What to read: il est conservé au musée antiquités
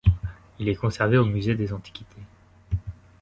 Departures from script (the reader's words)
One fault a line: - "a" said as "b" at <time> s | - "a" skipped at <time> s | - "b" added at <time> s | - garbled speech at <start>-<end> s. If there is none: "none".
- "des" added at 1.5 s